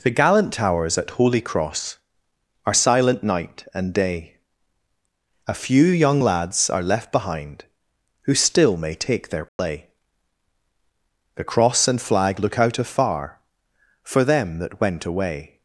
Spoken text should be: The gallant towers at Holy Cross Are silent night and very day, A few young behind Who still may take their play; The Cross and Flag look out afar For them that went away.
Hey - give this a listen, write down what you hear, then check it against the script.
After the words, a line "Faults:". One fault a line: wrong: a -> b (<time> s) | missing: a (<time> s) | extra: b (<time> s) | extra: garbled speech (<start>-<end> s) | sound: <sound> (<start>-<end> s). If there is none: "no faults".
The gallant towers at Holy Cross Are silent night and day, A few young lads are left behind Who still may take their play; The Cross and Flag look out afar For them that went away.
Faults:
missing: very (3.9 s)
extra: lads are left (6.2 s)
sound: dropout (9.5-9.6 s)